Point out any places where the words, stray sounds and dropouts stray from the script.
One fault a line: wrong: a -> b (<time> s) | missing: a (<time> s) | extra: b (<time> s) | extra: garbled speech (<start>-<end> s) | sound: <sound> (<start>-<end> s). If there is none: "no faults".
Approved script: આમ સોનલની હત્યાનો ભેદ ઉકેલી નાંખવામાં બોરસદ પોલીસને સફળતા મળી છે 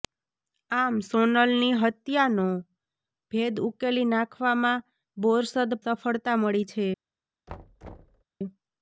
missing: પોલીસને (5.8 s)
sound: thud (7.5-8.2 s)